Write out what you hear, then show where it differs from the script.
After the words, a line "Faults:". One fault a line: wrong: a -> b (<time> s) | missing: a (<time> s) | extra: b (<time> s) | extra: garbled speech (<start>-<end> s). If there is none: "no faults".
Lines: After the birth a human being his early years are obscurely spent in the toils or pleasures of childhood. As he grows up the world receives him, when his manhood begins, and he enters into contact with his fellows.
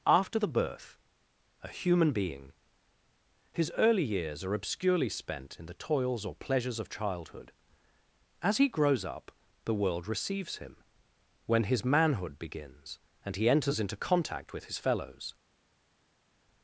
After the birth a human being his early years are obscurely spent in the toils or pleasures of childhood. As he grows up the world receives him, when his manhood begins, and he enters into contact with his fellows.
Faults:
no faults